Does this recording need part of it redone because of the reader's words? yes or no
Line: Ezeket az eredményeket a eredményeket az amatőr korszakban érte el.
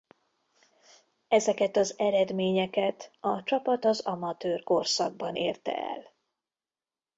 yes